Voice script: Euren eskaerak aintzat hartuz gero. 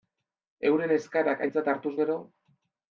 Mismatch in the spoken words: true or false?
false